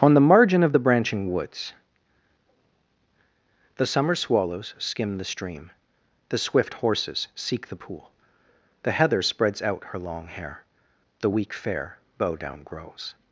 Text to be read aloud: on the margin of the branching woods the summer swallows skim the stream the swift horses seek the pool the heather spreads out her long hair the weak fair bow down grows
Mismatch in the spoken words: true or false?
false